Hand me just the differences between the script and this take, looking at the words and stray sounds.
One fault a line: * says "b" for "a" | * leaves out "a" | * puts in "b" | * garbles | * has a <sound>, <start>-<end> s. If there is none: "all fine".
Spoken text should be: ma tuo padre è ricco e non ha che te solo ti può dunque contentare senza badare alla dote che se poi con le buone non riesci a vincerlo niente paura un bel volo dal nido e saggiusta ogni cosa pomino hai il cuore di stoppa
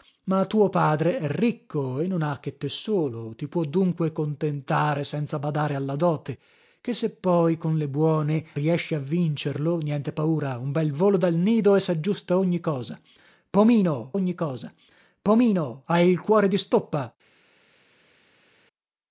* leaves out "non"
* puts in "ogni cosa pomino"